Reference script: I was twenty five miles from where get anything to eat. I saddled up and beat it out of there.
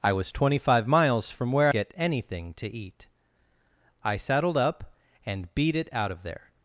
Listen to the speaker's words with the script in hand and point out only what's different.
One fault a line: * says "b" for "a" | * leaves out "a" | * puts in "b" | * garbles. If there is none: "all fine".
all fine